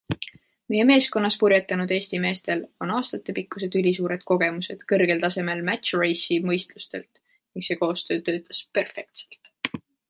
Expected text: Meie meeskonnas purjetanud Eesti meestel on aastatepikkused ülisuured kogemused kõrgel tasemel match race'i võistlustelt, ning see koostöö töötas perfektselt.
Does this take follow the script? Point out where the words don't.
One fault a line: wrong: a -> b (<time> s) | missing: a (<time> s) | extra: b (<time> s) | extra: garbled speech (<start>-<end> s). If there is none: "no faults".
no faults